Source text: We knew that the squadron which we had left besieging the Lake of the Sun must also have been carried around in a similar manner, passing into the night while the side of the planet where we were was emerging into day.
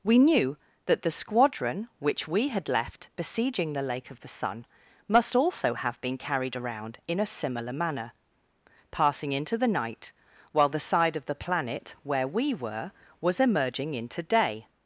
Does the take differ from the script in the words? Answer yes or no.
no